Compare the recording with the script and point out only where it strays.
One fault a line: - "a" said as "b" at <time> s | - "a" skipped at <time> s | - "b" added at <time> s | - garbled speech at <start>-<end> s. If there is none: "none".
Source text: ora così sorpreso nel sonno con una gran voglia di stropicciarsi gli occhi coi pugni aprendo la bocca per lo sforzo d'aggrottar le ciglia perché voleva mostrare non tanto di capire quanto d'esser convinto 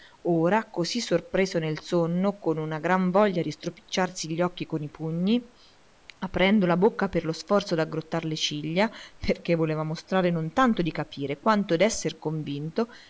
none